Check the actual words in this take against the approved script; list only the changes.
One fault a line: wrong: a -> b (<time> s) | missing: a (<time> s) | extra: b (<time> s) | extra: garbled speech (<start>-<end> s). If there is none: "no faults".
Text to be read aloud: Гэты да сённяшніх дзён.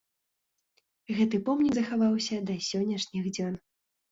extra: помнік захаваўся (1.5 s)